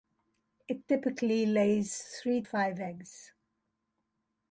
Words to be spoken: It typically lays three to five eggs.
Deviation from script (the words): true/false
true